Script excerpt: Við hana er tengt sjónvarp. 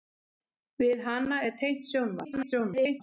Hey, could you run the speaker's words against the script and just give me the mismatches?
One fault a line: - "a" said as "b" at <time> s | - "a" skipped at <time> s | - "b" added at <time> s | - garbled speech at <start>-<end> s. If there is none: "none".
- garbled speech at 2.2-3.0 s